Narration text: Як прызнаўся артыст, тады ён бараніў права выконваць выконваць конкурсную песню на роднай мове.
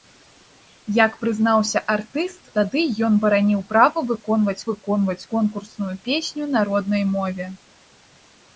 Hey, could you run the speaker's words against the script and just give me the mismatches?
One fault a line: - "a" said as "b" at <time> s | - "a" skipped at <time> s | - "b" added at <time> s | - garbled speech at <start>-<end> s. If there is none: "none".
none